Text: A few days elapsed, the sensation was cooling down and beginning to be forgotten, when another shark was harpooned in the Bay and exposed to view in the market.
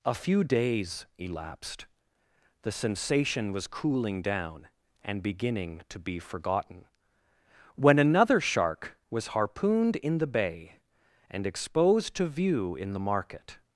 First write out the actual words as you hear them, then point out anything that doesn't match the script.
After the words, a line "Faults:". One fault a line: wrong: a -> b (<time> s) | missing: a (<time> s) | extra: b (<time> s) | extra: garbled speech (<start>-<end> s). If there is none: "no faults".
A few days elapsed, the sensation was cooling down and beginning to be forgotten, when another shark was harpooned in the Bay and exposed to view in the market.
Faults:
no faults